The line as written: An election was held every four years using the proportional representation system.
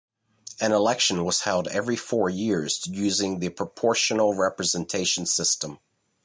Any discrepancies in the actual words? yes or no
no